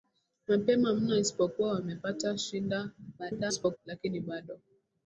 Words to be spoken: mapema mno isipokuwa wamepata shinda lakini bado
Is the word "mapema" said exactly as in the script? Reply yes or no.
yes